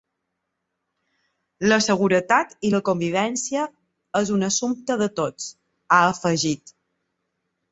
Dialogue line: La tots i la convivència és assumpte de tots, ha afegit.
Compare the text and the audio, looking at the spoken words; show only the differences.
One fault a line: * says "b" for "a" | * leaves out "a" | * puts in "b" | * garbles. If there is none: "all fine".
* says "seguretat" for "tots"
* puts in "un"